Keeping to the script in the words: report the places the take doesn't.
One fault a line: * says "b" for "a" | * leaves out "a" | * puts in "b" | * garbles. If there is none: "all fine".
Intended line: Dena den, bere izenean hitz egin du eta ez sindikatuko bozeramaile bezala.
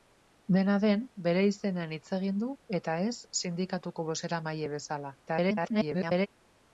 * garbles